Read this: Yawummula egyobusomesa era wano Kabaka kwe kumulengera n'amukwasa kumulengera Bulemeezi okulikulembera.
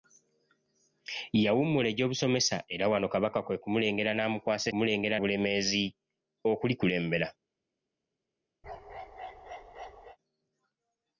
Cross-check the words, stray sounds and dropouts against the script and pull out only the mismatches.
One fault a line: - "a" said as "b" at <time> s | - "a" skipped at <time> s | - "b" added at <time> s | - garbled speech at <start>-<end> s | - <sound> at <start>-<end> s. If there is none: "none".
- bark at 8.6-10.2 s